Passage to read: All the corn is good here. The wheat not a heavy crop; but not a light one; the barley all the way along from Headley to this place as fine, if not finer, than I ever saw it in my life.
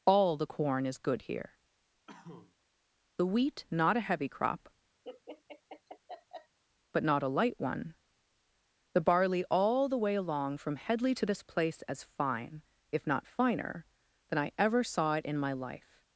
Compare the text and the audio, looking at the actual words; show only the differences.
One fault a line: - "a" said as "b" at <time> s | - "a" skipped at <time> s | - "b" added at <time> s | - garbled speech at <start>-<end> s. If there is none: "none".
none